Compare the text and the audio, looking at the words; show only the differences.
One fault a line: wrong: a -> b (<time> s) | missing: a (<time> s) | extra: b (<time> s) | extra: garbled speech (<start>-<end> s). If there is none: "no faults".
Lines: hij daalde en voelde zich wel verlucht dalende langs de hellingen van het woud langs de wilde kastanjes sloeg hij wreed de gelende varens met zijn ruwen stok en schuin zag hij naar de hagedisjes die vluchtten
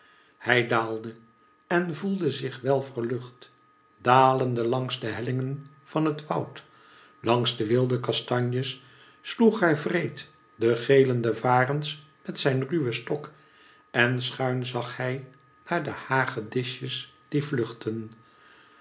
no faults